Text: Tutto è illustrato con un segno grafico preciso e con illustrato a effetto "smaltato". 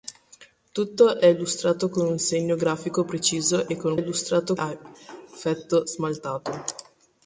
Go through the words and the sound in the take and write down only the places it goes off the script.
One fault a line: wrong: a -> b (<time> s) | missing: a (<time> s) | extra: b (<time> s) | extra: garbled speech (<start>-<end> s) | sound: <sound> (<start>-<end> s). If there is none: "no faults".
no faults